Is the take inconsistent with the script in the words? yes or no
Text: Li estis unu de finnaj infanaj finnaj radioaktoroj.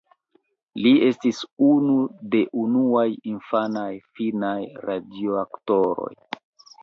yes